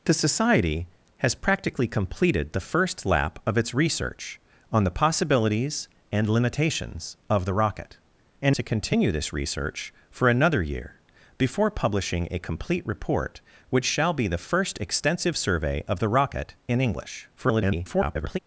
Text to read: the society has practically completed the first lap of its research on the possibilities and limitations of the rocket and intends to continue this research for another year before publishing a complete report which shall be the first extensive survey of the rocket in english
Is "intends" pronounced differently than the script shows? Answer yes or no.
yes